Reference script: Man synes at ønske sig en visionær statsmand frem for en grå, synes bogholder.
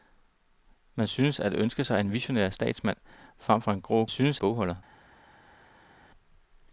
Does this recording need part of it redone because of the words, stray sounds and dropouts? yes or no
no